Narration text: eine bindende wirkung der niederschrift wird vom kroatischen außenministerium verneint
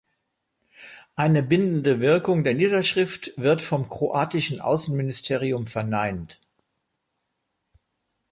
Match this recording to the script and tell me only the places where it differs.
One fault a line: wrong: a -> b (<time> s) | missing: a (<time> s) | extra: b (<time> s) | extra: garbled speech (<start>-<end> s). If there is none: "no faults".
no faults